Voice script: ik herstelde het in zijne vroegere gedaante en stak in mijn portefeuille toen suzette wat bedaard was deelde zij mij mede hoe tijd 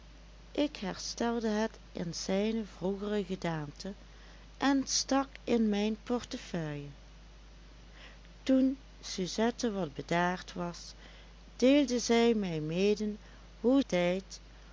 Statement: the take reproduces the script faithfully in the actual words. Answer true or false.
true